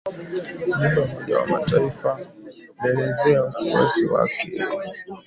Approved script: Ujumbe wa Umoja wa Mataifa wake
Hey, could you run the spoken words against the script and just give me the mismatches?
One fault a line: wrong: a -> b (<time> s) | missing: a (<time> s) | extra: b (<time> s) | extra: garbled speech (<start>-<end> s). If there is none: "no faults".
extra: ulielezea wasiwasi (2.8 s)